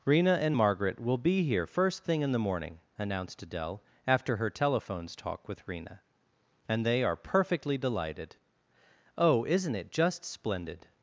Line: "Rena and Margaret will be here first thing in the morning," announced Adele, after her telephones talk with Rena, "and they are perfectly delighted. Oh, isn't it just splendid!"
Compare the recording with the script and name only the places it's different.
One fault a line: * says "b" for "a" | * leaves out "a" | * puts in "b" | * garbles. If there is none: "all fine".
all fine